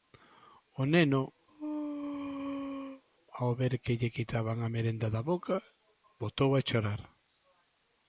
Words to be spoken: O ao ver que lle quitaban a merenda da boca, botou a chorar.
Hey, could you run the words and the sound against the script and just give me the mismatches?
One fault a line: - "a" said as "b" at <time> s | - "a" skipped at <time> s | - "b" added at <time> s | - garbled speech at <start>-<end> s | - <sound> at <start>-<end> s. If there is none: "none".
- "neno" added at 0.9 s
- sneeze at 1.5-3.0 s